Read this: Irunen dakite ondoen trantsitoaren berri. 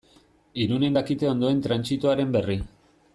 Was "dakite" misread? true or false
false